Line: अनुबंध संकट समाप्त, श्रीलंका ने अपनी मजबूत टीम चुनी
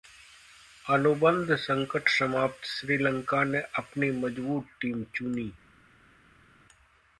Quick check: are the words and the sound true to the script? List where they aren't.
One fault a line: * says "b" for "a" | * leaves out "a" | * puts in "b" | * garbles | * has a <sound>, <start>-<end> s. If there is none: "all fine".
all fine